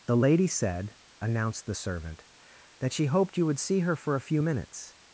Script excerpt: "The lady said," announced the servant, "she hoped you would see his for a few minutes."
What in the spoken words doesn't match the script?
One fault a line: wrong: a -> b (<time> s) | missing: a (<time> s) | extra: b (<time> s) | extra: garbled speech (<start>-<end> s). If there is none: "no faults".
extra: that (2.8 s)
wrong: his -> her (3.8 s)